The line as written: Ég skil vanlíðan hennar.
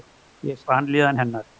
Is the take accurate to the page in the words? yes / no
no